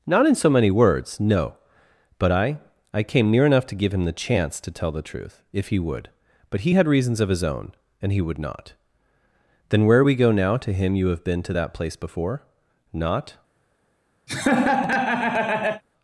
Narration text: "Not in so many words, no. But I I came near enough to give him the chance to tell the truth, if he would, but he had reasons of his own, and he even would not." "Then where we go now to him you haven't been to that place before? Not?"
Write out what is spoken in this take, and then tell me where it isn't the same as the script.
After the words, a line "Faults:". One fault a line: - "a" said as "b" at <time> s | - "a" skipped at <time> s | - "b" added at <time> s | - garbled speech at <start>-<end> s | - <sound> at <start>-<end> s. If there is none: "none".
"Not in so many words, no. But I I came near enough to give him the chance to tell the truth, if he would, but he had reasons of his own, and he would not." "Then where we go now to him you have been to that place before? Not?"
Faults:
- "even" skipped at 8.2 s
- "haven't" said as "have" at 11.1 s
- laugh at 14.3-15.8 s